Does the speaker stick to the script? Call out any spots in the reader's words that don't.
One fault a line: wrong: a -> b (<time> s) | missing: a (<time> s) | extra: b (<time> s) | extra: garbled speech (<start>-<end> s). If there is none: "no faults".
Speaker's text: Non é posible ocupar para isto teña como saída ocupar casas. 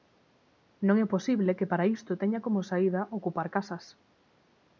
wrong: ocupar -> que (1.6 s)